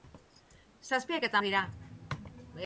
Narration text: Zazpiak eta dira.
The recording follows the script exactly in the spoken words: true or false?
true